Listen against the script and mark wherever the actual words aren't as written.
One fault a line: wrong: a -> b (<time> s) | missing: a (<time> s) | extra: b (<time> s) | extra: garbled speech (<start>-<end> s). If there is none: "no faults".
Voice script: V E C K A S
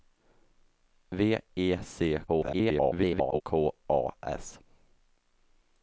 extra: garbled speech (2.3-3.4 s)